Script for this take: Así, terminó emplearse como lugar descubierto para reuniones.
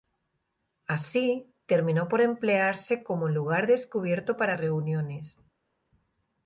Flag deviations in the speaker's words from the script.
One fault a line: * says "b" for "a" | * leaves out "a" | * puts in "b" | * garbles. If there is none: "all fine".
* puts in "por"